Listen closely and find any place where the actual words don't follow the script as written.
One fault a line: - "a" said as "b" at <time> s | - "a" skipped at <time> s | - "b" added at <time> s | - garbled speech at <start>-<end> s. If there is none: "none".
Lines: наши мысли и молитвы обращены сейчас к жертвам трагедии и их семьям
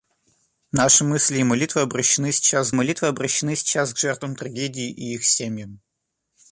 - "молитвы обращены сейчас" added at 2.7 s